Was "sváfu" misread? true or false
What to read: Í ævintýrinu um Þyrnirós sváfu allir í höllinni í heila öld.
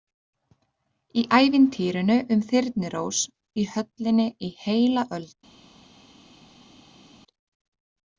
true